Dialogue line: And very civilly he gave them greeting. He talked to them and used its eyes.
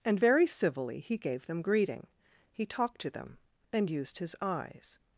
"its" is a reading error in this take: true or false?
true